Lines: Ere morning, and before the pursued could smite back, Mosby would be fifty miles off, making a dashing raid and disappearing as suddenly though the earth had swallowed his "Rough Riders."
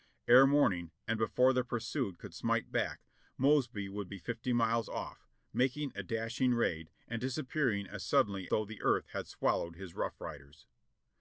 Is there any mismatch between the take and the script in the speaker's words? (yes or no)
no